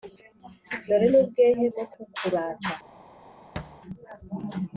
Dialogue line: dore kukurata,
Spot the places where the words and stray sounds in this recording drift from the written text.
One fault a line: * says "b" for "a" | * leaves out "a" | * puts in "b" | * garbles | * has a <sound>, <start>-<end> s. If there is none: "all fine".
* puts in "n'ubwehe bwo"
* has a thud, 3.6-3.8 s